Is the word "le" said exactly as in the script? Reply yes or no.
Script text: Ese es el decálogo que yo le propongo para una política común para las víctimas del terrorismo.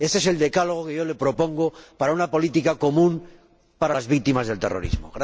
yes